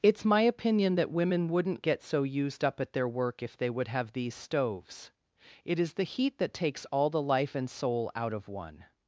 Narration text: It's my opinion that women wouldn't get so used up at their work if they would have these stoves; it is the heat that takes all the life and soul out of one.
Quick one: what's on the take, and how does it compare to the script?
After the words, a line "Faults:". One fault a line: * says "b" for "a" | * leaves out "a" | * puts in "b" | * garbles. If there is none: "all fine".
It's my opinion that women wouldn't get so used up at their work if they would have these stoves; it is the heat that takes all the life and soul out of one.
Faults:
all fine